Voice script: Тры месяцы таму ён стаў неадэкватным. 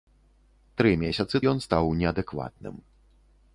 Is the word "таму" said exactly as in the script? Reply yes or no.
no